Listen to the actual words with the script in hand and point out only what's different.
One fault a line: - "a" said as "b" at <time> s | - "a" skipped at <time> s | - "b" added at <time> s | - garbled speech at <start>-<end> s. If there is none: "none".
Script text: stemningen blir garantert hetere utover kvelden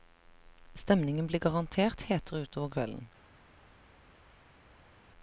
none